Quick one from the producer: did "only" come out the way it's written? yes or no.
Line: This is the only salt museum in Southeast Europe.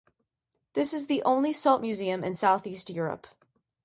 yes